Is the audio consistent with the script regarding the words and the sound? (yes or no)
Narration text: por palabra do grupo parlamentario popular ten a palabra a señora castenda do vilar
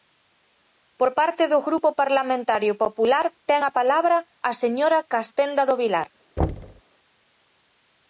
no